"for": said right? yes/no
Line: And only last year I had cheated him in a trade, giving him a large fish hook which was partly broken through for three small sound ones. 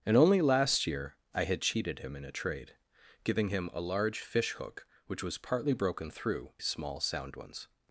no